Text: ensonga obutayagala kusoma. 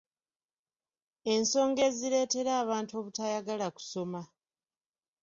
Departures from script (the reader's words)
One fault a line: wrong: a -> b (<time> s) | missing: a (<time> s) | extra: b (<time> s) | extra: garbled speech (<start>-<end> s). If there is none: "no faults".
extra: ezireetera abantu (1.9 s)